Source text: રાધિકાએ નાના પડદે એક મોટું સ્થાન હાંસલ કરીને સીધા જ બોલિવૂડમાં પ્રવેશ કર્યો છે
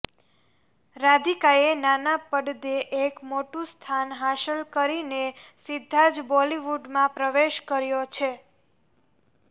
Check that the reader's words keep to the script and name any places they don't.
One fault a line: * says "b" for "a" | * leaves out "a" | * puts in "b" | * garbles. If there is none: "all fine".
all fine